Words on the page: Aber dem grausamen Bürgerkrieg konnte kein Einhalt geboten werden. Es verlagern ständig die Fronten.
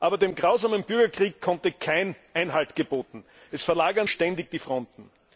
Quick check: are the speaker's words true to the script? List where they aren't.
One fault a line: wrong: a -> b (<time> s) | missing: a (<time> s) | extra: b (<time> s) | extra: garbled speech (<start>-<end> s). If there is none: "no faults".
no faults